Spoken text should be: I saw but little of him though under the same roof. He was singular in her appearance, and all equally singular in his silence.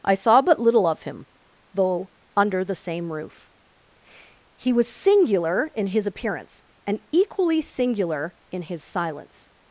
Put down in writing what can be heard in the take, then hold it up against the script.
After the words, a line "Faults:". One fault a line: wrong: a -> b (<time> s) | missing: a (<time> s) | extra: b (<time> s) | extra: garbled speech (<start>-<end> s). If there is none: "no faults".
I saw but little of him though under the same roof. He was singular in his appearance, and equally singular in his silence.
Faults:
wrong: her -> his (5.9 s)
missing: all (7.0 s)